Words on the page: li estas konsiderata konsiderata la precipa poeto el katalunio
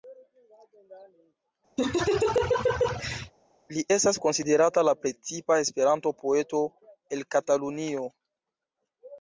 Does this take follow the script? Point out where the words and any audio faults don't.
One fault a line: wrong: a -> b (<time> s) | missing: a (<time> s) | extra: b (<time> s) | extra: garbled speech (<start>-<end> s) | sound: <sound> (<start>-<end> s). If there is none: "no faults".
sound: laugh (1.8-3.3 s)
missing: konsiderata (4.8 s)
extra: esperanto (5.7 s)